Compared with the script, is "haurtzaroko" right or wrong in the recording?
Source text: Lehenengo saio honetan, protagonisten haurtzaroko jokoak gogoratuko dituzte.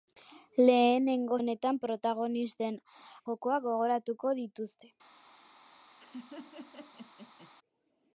wrong